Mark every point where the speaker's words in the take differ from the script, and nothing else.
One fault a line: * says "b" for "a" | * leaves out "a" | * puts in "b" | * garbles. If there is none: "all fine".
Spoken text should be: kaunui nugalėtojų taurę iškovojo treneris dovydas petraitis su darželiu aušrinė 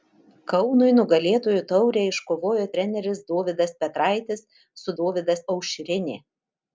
* says "dovydas" for "darželiu"